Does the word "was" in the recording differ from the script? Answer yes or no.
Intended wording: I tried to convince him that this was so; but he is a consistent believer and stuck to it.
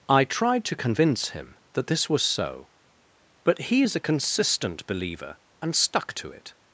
no